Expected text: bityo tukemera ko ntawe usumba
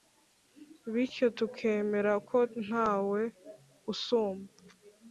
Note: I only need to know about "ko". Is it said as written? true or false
true